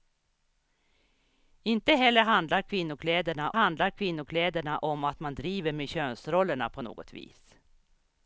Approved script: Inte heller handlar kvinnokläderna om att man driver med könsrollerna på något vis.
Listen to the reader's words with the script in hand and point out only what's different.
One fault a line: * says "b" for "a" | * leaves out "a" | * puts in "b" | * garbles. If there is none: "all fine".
* puts in "handlar kvinnokläderna"